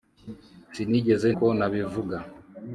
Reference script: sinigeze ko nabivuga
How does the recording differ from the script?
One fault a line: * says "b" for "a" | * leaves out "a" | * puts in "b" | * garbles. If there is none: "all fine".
all fine